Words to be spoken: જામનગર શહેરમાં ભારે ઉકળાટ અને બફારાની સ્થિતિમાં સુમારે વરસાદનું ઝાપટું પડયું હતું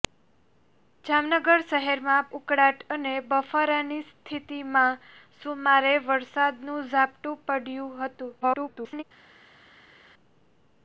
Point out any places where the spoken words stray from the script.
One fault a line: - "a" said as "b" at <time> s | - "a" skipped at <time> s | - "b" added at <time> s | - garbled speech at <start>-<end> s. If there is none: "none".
- "ભારે" skipped at 2.3 s
- garbled speech at 8.4-9.0 s